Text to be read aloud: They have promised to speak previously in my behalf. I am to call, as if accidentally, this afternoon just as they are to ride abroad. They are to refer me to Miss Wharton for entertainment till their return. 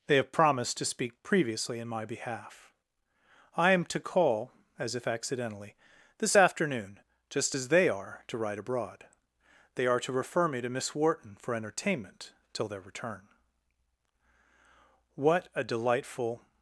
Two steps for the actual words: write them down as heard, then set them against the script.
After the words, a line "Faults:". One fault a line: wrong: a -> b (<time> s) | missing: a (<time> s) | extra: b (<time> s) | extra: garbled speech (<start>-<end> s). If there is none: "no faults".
They have promised to speak previously in my behalf. I am to call, as if accidentally, this afternoon just as they are to ride abroad. They are to refer me to Miss Wharton for entertainment till their return. What a delightful
Faults:
extra: What a delightful (15.1 s)